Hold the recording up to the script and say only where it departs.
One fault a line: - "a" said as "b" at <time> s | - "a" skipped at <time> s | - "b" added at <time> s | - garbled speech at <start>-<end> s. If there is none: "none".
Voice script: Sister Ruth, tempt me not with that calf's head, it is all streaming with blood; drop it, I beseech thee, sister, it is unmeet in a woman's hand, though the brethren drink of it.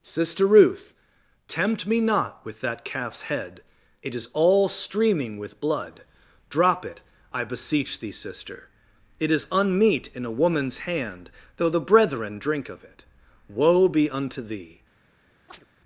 - "Woe be unto thee" added at 13.5 s